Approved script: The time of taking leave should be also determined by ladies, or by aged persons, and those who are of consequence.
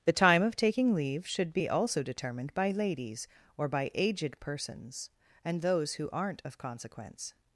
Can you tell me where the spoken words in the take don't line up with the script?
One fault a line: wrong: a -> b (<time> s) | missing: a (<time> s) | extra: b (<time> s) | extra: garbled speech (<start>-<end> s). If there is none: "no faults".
wrong: are -> aren't (6.1 s)